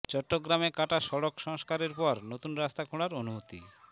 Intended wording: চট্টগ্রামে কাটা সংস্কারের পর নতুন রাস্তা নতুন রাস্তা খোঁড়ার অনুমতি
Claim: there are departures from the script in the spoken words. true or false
true